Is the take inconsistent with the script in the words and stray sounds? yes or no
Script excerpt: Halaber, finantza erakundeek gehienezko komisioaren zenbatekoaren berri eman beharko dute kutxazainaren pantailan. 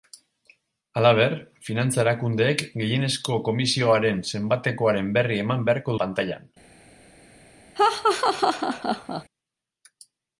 yes